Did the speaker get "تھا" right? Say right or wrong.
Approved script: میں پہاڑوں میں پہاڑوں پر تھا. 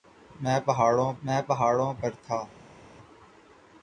right